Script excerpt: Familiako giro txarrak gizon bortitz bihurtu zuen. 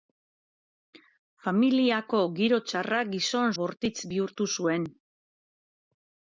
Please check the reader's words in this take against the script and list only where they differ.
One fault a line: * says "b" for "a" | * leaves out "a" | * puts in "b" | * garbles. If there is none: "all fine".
all fine